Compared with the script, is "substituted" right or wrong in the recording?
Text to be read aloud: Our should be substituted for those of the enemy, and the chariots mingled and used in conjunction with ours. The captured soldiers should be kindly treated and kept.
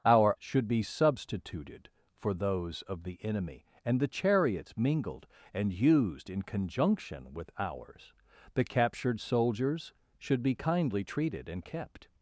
right